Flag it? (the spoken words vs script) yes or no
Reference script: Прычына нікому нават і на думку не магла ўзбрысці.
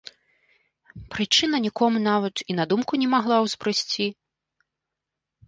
no